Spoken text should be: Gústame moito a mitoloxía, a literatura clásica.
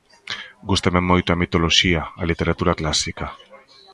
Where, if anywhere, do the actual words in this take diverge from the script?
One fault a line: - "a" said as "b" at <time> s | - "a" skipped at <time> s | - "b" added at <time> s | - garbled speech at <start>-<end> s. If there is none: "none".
none